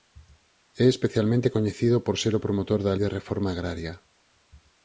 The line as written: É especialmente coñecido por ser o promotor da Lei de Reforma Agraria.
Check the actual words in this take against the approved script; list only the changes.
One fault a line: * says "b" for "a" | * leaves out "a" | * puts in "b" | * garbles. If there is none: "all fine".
* leaves out "Lei"